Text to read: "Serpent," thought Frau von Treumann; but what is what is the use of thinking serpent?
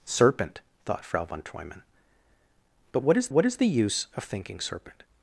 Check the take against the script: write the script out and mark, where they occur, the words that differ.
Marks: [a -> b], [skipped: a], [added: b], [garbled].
"Serpent," thought Frau von Treumann; but what is what is the use of thinking serpent?